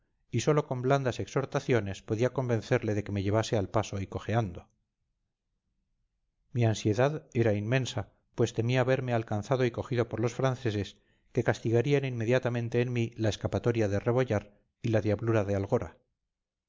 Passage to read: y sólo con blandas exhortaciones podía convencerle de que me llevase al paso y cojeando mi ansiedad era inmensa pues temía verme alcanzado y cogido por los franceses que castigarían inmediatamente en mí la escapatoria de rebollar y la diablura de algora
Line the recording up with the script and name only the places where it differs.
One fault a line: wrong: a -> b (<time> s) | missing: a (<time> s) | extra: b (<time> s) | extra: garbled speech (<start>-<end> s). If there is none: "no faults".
no faults